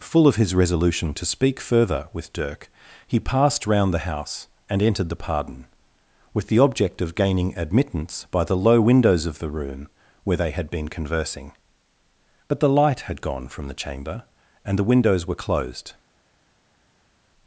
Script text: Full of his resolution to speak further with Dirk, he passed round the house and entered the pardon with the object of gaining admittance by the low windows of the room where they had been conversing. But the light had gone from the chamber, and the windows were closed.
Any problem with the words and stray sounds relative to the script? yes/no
no